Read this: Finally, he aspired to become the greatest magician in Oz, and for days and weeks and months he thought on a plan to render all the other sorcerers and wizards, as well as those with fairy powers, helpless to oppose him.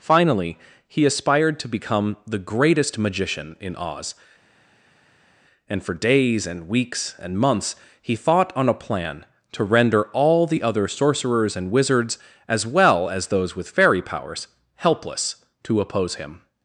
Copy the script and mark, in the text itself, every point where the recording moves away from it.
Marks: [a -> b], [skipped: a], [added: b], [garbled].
Finally, he aspired to become the greatest magician in Oz, and for days and weeks and months he thought on a plan to render all the other sorcerers and wizards, as well as those with fairy powers, helpless to oppose him.